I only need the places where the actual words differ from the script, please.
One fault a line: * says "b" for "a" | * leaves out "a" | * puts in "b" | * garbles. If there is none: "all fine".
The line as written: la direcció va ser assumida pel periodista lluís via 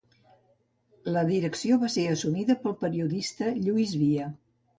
all fine